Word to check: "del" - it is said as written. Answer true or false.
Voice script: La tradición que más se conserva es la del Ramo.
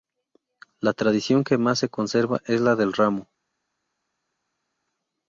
true